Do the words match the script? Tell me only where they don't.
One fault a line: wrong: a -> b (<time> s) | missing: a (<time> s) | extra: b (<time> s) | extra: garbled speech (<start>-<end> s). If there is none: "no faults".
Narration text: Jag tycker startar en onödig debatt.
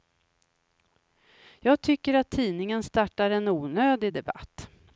extra: att tidningen (2.1 s)